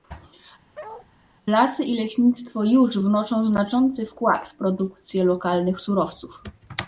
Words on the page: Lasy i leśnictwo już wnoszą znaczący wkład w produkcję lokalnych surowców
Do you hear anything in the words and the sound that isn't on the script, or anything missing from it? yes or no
yes